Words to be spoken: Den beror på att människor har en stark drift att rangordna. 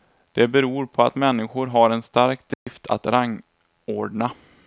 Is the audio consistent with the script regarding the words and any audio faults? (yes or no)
no